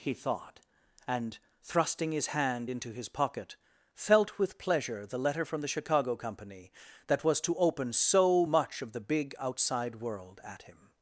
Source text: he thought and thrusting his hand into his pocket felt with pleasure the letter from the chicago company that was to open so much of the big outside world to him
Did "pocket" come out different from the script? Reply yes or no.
no